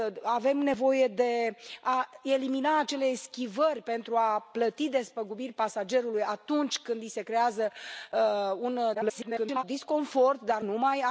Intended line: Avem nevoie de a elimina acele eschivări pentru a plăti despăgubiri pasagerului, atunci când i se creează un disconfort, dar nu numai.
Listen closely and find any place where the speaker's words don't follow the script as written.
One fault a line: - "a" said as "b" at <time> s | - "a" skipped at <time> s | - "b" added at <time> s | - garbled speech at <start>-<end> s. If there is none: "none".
- garbled speech at 8.9-9.6 s
- "nu" skipped at 10.6 s